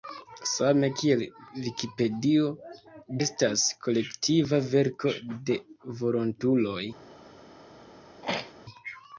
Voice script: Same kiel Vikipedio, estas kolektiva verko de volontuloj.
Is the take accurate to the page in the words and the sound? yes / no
no